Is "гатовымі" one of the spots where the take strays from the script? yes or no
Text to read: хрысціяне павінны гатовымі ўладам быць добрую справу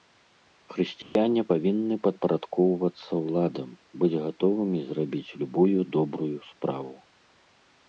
yes